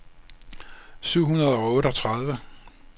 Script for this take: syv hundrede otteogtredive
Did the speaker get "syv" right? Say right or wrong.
right